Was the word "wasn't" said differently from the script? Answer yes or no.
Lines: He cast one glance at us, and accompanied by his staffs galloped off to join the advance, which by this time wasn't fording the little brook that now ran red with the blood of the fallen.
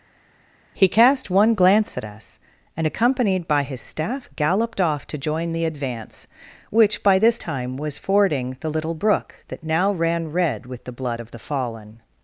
yes